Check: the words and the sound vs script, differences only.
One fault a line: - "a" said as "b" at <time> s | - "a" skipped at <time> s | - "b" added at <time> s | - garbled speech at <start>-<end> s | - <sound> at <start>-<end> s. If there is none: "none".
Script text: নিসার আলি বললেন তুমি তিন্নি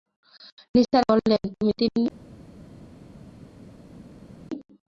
- "আলি" skipped at 1.0 s